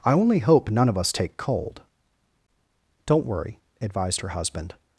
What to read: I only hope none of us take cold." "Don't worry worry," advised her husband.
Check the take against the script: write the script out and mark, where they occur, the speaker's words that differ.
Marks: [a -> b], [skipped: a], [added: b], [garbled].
I only hope none of us take cold." "Don't worry [skipped: worry,"] advised her husband.